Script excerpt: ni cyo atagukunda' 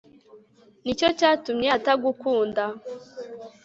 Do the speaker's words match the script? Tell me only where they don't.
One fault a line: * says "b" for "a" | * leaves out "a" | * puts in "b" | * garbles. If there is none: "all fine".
* puts in "cyatumye"